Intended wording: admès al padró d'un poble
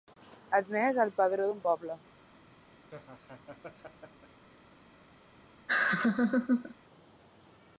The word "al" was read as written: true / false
true